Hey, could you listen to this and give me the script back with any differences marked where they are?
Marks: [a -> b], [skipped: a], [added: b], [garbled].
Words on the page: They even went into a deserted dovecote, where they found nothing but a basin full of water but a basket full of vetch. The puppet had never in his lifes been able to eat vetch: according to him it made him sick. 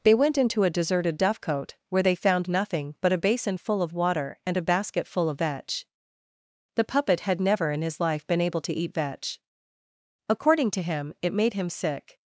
They [skipped: even] went into a deserted dovecote, where they found nothing but a basin full of water [but -> and] a basket full of vetch. The puppet had never in his [lifes -> life] been able to eat vetch: according to him it made him sick.